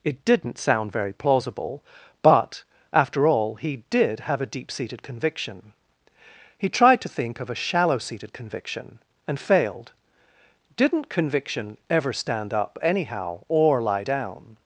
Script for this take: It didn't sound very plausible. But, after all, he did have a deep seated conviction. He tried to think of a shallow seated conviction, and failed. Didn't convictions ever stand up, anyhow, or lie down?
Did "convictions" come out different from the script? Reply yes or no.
yes